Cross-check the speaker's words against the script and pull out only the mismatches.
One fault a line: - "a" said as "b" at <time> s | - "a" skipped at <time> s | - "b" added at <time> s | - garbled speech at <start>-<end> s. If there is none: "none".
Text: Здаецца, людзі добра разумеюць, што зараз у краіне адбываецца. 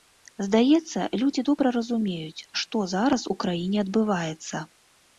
none